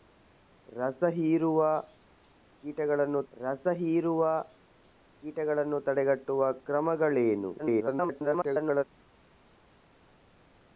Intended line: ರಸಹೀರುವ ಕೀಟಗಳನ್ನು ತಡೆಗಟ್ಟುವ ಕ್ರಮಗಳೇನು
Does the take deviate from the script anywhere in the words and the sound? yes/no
yes